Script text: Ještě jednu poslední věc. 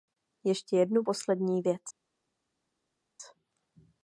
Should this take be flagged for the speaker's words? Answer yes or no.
no